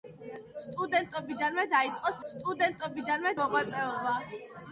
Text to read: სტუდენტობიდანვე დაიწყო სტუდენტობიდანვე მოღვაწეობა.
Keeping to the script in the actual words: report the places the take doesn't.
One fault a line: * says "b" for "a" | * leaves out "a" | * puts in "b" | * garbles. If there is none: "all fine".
all fine